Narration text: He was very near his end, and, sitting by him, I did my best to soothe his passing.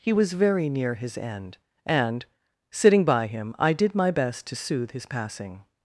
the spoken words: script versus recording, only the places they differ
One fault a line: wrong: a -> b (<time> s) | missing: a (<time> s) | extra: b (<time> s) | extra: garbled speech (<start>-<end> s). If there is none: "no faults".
no faults